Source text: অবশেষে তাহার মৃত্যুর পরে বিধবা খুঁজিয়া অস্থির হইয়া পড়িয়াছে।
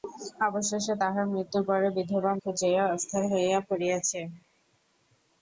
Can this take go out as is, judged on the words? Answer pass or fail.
pass